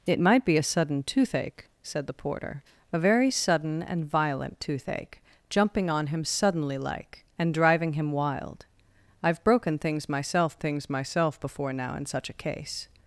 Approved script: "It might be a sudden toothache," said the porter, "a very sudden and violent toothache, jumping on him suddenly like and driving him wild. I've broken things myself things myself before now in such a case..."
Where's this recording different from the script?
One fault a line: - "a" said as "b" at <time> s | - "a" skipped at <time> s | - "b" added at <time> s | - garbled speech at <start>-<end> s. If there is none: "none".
none